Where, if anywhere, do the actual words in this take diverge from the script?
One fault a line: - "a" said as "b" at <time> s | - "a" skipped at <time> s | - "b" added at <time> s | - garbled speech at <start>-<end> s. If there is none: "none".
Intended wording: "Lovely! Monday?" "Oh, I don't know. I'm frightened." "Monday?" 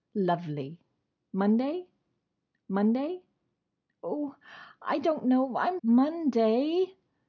- "monday" added at 2.7 s
- "frightened" skipped at 5.8 s